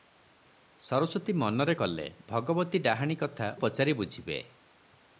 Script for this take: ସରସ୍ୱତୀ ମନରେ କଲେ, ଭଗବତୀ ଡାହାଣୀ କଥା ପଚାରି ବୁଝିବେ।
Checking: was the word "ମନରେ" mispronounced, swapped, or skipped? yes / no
no